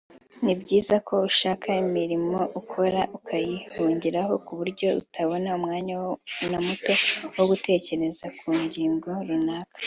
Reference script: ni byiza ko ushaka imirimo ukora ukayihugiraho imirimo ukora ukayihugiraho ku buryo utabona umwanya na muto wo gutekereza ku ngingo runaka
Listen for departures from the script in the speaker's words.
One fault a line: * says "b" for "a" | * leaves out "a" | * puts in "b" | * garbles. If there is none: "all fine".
* leaves out "imirimo ukora ukayihugiraho"